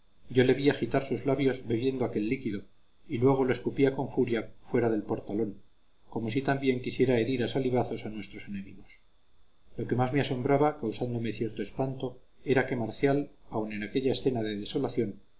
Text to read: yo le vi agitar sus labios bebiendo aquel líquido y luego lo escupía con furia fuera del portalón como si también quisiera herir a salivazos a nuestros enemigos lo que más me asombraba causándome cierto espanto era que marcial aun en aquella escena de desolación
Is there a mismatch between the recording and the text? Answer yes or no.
no